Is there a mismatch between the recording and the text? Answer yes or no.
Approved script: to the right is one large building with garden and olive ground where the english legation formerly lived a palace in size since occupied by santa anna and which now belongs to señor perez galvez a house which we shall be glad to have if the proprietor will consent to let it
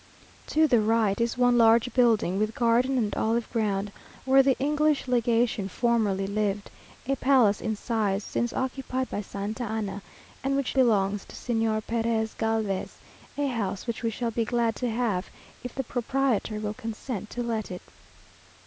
yes